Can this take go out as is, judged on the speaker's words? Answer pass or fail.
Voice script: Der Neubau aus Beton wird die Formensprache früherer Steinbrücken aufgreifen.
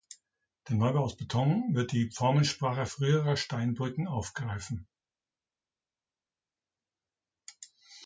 pass